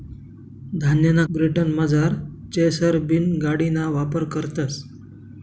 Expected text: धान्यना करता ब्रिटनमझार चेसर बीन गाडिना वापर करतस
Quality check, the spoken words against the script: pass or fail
fail